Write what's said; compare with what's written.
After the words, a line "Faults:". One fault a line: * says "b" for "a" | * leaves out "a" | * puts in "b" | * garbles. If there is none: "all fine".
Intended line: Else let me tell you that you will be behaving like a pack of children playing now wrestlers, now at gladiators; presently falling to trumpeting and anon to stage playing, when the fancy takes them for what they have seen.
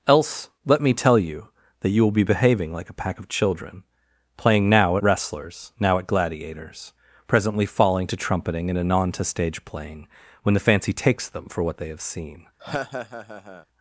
Else let me tell you that you will be behaving like a pack of children playing now wrestlers, now at gladiators; presently falling to trumpeting and anon to stage playing, when the fancy takes them for what they have seen.
Faults:
all fine